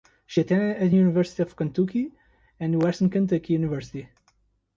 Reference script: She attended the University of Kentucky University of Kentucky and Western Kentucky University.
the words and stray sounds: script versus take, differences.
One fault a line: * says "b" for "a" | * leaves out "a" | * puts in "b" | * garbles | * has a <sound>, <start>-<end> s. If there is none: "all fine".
* leaves out "University of Kentucky"